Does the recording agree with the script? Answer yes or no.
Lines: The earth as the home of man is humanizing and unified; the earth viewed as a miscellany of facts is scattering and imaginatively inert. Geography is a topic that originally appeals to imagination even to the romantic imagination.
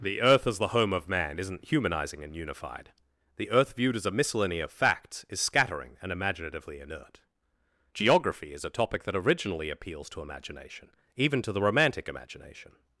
no